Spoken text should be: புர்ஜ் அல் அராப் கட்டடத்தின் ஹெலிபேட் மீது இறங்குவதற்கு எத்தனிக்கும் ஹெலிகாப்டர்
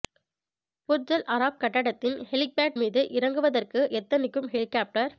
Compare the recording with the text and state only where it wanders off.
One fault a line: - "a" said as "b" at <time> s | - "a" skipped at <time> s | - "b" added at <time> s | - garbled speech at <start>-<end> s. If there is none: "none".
none